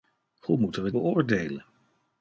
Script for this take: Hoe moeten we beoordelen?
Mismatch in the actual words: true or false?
false